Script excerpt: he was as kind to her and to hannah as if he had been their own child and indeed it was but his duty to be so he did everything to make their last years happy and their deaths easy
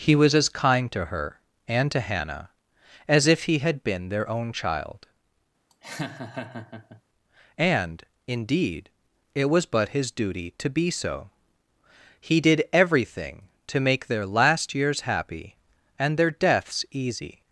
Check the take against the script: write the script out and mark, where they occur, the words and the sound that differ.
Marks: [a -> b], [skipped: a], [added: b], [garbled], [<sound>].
he was as kind to her and to hannah as if he had been their own child [laugh] and indeed it was but his duty to be so he did everything to make their last years happy and their deaths easy